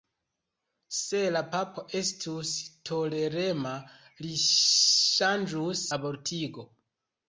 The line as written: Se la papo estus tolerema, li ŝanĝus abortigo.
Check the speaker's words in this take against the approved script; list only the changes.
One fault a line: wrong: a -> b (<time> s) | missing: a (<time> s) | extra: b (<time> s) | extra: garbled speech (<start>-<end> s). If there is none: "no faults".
no faults